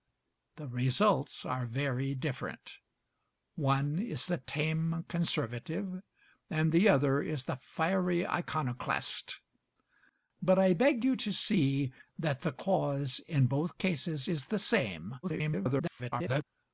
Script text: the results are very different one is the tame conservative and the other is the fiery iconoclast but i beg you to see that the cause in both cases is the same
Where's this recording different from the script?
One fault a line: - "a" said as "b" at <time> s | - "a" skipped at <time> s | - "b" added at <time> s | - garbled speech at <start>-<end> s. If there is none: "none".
- garbled speech at 15.2-16.4 s